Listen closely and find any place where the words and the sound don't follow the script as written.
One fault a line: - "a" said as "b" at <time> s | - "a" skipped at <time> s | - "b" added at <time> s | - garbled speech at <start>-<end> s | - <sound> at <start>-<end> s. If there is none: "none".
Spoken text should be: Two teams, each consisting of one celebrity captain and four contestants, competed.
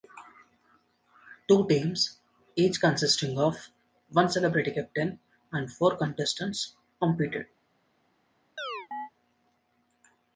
- chirp at 8.6-9.1 s